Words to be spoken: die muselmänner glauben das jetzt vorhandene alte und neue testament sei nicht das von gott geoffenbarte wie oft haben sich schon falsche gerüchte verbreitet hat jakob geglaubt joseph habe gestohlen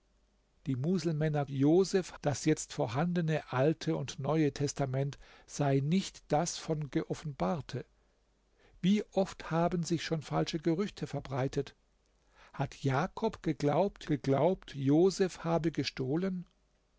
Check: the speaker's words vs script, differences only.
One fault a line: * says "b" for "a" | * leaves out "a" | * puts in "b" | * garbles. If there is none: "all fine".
* says "joseph" for "glauben"
* leaves out "gott"
* puts in "geglaubt"